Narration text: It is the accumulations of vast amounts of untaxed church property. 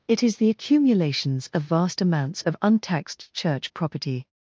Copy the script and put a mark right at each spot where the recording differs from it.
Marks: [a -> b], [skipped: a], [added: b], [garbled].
It is the accumulations of vast amounts of untaxed church property.